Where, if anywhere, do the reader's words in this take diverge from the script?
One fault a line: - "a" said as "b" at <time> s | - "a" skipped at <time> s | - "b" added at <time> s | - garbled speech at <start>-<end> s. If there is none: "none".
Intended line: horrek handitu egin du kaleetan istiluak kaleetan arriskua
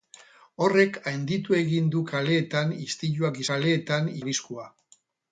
none